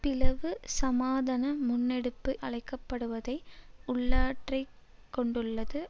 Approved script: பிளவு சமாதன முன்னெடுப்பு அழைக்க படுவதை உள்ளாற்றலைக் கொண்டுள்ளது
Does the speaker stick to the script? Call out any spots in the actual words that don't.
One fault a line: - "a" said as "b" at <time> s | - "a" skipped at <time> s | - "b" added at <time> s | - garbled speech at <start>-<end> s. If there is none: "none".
none